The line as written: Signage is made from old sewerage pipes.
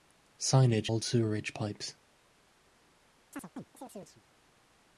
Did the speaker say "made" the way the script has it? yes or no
no